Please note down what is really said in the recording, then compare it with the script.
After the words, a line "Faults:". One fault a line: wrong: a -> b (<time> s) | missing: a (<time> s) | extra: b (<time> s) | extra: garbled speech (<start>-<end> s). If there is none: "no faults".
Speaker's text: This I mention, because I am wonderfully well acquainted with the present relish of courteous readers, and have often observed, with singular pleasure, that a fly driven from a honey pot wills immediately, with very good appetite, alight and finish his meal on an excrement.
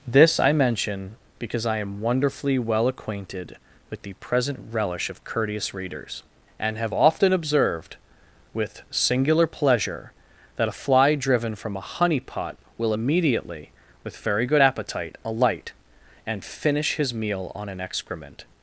This I mention, because I am wonderfully well acquainted with the present relish of courteous readers, and have often observed, with singular pleasure, that a fly driven from a honey pot will immediately, with very good appetite, alight and finish his meal on an excrement.
Faults:
wrong: wills -> will (12.8 s)